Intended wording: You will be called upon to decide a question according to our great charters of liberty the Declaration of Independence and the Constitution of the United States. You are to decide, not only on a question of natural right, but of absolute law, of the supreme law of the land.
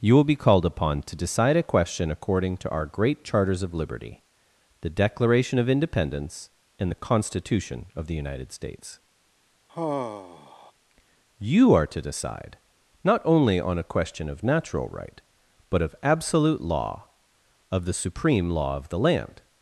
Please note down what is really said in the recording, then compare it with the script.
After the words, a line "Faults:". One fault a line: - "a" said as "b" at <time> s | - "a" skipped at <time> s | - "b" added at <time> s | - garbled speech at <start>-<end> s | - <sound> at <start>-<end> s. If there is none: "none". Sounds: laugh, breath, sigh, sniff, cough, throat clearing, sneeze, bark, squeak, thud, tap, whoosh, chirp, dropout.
You will be called upon to decide a question according to our great charters of liberty the Declaration of Independence and the Constitution of the United States. You are to decide, not only on a question of natural right, but of absolute law, of the supreme law of the land.
Faults:
- sigh at 9.7-10.7 s